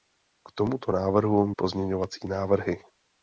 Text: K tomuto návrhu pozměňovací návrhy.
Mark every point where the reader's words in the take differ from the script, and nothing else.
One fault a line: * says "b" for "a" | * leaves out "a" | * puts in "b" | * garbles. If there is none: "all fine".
all fine